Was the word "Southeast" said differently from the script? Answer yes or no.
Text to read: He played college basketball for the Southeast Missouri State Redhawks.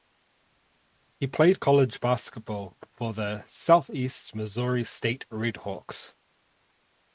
no